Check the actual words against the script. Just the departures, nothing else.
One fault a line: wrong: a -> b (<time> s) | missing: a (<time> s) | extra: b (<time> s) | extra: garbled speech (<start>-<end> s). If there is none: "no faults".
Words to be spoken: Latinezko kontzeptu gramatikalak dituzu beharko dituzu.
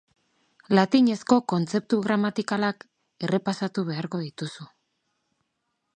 wrong: dituzu -> errepasatu (3.3 s)